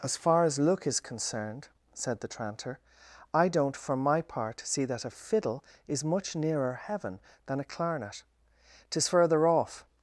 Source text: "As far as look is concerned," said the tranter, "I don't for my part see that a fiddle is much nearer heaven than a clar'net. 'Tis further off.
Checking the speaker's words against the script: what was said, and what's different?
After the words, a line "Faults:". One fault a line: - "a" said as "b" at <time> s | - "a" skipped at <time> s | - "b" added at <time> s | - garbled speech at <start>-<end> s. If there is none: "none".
"As far as look is concerned," said the tranter, "I don't for my part see that a fiddle is much nearer heaven than a clar'net. 'Tis further off.
Faults:
none